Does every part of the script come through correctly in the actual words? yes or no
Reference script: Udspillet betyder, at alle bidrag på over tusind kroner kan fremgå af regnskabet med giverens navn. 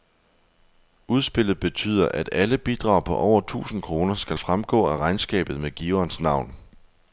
no